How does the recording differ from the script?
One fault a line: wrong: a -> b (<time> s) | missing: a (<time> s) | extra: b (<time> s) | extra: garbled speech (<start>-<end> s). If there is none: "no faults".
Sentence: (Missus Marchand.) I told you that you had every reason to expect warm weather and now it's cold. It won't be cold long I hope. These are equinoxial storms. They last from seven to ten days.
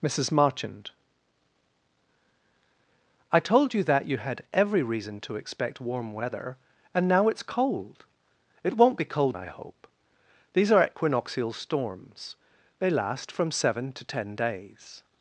missing: long (9.4 s)